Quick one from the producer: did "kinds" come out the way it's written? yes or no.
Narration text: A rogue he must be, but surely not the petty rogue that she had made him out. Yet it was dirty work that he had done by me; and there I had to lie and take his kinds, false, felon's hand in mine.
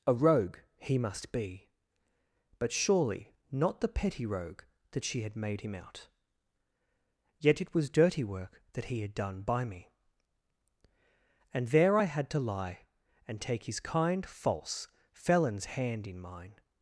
no